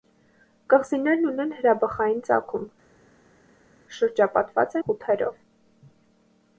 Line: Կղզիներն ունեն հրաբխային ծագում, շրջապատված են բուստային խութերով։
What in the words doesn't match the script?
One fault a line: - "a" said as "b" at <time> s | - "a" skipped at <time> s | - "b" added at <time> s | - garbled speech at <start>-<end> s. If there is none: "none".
- "են բուստային" skipped at 4.8 s